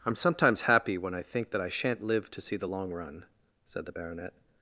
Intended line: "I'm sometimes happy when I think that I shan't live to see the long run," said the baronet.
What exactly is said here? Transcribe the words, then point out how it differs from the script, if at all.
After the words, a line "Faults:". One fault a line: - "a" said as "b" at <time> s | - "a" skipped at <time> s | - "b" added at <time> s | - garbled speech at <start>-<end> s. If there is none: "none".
"I'm sometimes happy when I think that I shan't live to see the long run," said the baronet.
Faults:
none